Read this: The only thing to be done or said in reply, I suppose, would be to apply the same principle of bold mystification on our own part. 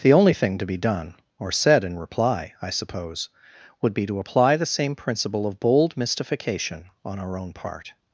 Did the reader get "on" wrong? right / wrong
right